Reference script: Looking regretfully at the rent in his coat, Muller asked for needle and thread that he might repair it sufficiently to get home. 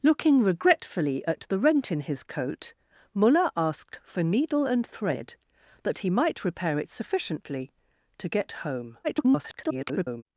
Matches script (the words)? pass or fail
fail